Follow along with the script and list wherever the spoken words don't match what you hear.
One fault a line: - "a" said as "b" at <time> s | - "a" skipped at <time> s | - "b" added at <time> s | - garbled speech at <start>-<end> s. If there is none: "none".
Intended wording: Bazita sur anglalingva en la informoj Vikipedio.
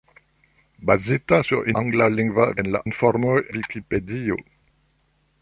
none